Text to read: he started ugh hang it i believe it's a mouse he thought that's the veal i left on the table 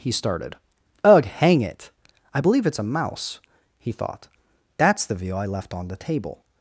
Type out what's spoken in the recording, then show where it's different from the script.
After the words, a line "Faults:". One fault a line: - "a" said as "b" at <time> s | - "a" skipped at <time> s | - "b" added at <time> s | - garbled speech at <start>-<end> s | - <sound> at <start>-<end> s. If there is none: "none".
he started ugh hang it i believe it's a mouse he thought that's the view i left on the table
Faults:
- "veal" said as "view" at 5.1 s